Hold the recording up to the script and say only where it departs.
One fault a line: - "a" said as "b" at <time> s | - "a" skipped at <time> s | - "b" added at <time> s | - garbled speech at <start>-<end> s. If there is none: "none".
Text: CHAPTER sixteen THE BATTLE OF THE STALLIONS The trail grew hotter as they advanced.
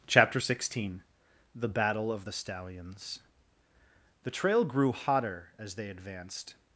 none